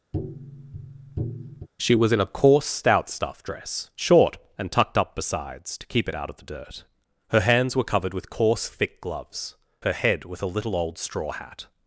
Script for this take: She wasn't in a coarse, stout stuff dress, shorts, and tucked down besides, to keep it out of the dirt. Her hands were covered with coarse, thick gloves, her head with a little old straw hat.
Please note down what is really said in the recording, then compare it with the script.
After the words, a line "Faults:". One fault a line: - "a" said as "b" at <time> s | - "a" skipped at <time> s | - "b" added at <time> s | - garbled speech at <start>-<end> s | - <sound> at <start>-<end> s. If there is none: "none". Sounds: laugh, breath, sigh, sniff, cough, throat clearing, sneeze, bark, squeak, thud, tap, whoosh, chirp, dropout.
She was in a coarse, stout stuff dress, short, and tucked up besides, to keep it out of the dirt. Her hands were covered with coarse, thick gloves, her head with a little old straw hat.
Faults:
- tap at 0.1-1.7 s
- "wasn't" said as "was" at 1.9 s
- "shorts" said as "short" at 4.0 s
- "down" said as "up" at 5.0 s